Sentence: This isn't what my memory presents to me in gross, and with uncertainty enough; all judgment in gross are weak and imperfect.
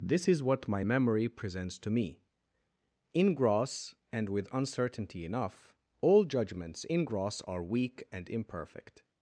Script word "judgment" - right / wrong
wrong